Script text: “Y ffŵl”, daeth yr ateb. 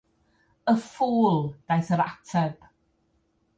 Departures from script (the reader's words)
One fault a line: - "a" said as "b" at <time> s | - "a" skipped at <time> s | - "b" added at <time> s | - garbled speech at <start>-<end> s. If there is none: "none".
none